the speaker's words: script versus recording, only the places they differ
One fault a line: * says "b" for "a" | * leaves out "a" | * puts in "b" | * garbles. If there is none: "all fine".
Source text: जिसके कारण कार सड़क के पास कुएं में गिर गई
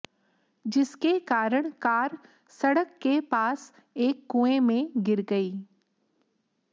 * puts in "एक"